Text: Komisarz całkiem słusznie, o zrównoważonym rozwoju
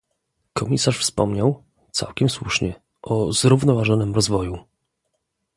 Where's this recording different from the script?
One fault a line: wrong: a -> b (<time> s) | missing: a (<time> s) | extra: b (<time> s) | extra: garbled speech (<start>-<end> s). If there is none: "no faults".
extra: wspomniał (1.0 s)